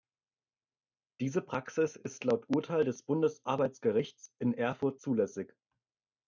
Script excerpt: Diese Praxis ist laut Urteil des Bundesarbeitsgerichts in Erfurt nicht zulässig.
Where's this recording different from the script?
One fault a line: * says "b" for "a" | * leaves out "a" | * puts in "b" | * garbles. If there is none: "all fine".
* leaves out "nicht"